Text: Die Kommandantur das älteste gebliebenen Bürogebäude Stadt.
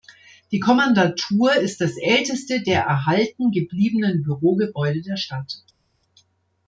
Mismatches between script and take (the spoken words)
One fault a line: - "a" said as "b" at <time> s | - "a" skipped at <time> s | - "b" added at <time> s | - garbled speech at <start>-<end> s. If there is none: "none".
- "ist" added at 1.5 s
- "der erhalten" added at 2.6 s
- "der" added at 5.0 s